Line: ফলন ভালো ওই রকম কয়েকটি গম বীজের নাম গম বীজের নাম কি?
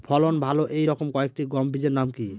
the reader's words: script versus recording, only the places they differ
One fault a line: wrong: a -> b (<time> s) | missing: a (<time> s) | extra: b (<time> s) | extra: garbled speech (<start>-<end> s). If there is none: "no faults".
wrong: ওই -> এই (0.7 s)
missing: গম বীজের নাম (2.1 s)